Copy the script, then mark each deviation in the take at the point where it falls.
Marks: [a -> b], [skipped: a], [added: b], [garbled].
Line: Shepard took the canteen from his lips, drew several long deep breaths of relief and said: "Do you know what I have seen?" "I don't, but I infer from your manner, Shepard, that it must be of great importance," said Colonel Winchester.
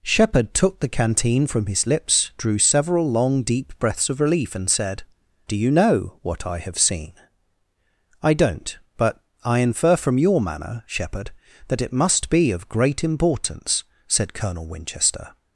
Shepard took the canteen from his lips, drew several long deep breaths of relief and said: "Do you know what I have seen?" "I don't, but I infer from your manner, Shepard, that it must be of great importance," said Colonel Winchester.